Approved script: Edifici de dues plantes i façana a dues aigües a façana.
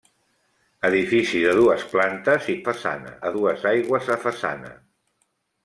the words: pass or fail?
pass